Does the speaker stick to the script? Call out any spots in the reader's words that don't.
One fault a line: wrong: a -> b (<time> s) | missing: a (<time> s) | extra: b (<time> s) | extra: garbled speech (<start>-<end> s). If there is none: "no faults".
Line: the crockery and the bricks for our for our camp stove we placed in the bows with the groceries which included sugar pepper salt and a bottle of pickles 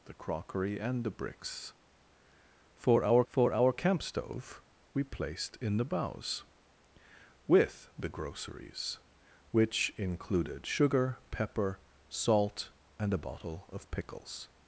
no faults